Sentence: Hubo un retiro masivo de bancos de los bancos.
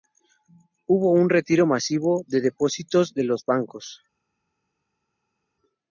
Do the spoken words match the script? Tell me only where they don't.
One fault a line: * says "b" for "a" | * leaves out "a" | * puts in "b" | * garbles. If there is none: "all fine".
* says "depósitos" for "bancos"